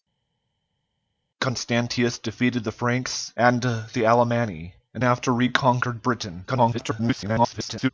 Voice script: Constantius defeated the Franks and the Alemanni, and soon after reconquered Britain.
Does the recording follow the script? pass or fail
fail